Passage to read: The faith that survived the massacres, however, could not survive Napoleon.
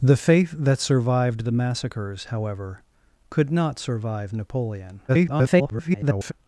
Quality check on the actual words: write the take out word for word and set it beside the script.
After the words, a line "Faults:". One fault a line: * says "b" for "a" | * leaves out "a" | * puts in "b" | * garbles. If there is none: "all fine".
The faith that survived the massacres, however, could not survive Napoleon. [garbled]
Faults:
* garbles